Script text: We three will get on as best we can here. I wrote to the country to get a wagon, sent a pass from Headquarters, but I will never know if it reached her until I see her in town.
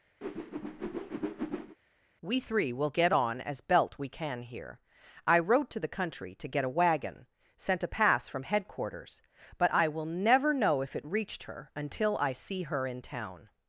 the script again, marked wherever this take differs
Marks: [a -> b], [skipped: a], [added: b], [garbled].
We three will get on as [best -> belt] we can here. I wrote to the country to get a wagon, sent a pass from Headquarters, but I will never know if it reached her until I see her in town.